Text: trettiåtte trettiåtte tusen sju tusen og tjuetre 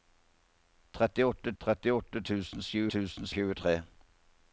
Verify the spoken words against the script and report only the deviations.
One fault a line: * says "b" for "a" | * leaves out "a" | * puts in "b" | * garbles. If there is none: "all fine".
all fine